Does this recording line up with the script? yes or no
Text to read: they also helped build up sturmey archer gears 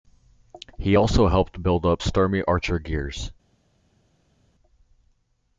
no